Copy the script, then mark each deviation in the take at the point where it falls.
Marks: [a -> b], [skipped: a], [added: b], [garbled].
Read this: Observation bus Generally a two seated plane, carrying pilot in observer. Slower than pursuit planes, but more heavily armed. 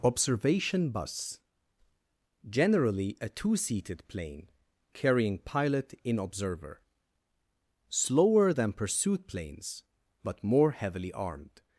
Observation bus Generally a two seated plane, carrying pilot in observer. Slower than pursuit planes, but more heavily armed.